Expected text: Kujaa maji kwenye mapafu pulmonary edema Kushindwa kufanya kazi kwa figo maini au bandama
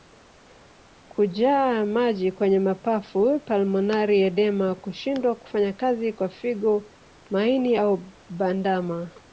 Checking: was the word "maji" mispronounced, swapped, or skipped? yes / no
no